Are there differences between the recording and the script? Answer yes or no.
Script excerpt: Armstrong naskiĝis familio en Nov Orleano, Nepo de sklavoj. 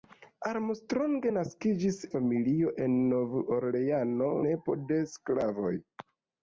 no